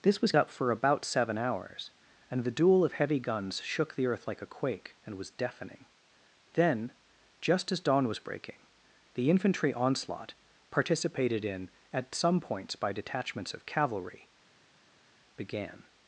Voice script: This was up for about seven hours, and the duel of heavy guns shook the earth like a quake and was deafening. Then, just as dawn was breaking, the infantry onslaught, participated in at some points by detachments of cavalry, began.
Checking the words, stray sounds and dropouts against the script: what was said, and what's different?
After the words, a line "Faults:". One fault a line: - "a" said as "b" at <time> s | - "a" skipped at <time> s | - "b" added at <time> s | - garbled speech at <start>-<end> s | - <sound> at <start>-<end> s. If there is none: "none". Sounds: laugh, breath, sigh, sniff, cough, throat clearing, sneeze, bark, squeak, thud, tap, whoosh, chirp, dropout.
This was up for about seven hours, and the duel of heavy guns shook the earth like a quake and was deafening. Then, just as dawn was breaking, the infantry onslaught, participated in at some points by detachments of cavalry, began.
Faults:
none